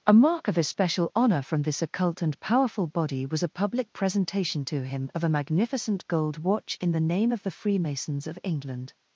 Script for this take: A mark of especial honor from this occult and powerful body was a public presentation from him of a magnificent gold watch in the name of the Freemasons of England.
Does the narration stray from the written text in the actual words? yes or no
yes